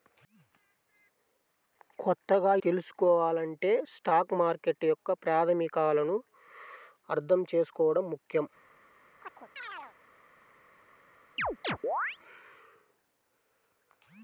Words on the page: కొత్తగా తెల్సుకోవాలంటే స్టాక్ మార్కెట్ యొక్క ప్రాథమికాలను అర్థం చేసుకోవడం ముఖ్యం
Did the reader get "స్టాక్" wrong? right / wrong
right